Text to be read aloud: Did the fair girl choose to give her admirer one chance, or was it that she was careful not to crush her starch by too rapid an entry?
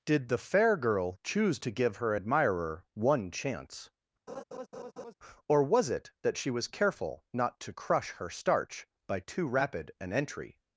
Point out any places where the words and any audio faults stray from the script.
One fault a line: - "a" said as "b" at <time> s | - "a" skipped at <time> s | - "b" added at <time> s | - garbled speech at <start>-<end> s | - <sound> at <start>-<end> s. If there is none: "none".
- laugh at 4.3-5.1 s